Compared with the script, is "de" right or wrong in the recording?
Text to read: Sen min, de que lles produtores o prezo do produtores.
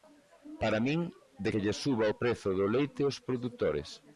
right